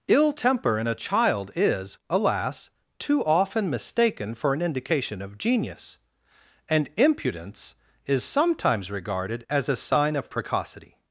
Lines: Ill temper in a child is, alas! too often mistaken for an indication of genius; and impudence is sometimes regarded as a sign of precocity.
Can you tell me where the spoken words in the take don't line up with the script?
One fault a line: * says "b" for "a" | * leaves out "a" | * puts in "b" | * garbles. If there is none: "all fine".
all fine